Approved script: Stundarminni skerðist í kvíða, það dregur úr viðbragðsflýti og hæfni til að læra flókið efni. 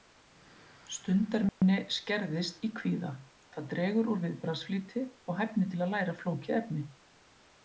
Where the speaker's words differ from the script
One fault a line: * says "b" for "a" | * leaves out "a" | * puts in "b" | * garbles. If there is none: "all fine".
all fine